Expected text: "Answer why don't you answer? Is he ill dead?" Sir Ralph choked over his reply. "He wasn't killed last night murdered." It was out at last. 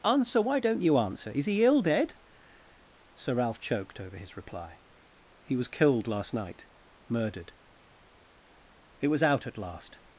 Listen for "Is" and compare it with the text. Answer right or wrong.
right